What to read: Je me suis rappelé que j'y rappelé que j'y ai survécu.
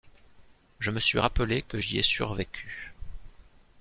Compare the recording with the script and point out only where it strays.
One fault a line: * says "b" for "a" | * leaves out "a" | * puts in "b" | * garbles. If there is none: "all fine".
* leaves out "rappelé que j'y"